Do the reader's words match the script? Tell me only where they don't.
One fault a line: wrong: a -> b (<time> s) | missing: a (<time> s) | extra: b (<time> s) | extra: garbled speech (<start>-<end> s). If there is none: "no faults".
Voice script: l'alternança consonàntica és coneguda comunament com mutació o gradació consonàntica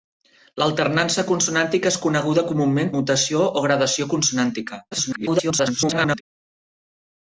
missing: com (2.9 s)
extra: garbled speech (4.9-6.2 s)